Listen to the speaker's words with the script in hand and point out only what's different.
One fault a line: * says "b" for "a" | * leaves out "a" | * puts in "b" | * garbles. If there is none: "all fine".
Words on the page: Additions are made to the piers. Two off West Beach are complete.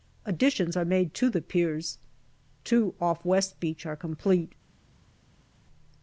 all fine